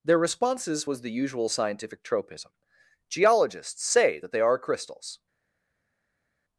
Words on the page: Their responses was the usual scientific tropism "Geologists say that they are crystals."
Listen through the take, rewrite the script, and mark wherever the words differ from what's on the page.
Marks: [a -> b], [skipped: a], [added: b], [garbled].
Their responses was the usual scientific tropism "Geologists say that they are crystals."